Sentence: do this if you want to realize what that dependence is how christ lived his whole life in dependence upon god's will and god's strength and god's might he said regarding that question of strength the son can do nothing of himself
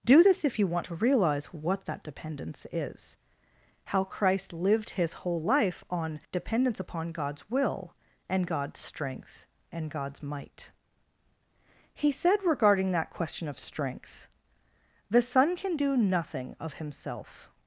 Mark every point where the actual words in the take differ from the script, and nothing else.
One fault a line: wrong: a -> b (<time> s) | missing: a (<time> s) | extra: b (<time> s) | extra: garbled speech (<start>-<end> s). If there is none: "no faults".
wrong: in -> on (5.9 s)